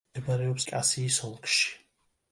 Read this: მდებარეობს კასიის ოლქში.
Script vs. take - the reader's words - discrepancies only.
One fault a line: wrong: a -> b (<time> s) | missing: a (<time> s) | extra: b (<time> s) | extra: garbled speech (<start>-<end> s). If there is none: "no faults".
no faults